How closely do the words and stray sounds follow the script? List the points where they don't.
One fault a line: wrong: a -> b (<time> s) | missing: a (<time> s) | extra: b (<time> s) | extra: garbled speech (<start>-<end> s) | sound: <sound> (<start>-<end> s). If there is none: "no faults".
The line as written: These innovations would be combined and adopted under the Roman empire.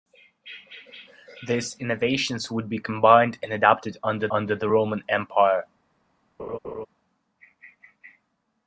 extra: under (4.3 s)
sound: laugh (6.4-6.9 s)